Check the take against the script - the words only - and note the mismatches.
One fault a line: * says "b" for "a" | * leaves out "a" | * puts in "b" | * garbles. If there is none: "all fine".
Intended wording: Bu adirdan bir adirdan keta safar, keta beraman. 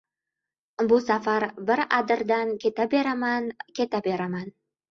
* says "safar" for "adirdan"
* says "beraman" for "safar"